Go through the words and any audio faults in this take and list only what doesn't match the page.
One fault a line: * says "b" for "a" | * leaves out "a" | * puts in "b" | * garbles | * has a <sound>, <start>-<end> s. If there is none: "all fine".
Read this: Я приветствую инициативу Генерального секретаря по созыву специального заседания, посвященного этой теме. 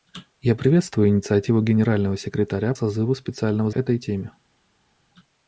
* leaves out "по"
* leaves out "заседания посвященного"